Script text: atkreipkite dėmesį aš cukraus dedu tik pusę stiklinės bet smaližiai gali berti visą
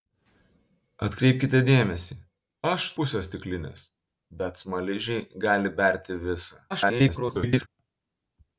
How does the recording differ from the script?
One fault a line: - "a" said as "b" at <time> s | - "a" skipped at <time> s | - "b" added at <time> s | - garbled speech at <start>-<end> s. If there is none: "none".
- "cukraus dedu tik" skipped at 2.9 s
- garbled speech at 6.7-7.7 s